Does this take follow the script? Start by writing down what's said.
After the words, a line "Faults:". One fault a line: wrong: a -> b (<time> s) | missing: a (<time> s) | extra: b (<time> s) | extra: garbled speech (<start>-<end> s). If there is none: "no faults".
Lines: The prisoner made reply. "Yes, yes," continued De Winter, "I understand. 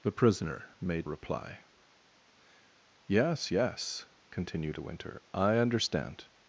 The prisoner made reply. "Yes, yes," continued De Winter, "I understand.
Faults:
no faults